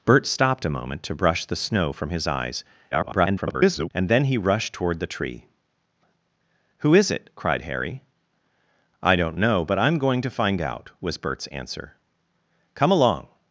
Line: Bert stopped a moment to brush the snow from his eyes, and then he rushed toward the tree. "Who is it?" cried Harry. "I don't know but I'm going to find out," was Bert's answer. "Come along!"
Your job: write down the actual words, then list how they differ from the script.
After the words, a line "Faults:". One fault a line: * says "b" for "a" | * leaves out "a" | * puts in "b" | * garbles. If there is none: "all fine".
Bert stopped a moment to brush the snow from his eyes, [garbled] and then he rushed toward the tree. "Who is it?" cried Harry. "I don't know but I'm going to find out," was Bert's answer. "Come along!"
Faults:
* garbles